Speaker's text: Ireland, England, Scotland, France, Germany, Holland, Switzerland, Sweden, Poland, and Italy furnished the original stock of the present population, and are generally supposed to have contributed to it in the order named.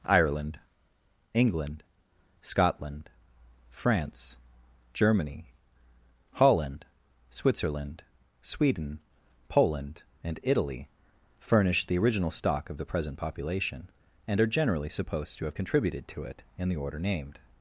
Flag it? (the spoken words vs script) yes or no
no